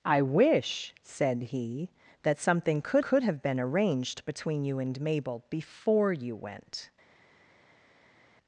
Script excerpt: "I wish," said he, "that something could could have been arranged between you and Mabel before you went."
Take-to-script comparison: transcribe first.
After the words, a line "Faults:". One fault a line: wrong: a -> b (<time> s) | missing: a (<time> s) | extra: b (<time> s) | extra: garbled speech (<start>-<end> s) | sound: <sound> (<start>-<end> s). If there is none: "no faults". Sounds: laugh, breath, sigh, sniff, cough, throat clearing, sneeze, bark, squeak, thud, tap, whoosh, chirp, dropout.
"I wish," said he, "that something could could have been arranged between you and Mabel before you went."
Faults:
no faults